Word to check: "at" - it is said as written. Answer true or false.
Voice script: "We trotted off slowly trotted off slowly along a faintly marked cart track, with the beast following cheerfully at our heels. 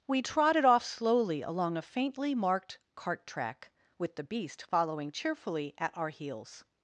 true